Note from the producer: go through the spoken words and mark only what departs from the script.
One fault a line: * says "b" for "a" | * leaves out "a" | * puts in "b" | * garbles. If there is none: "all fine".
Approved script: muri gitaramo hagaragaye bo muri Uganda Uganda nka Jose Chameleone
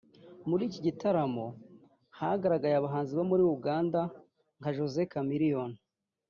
* puts in "iki"
* puts in "abahanzi"
* leaves out "Uganda"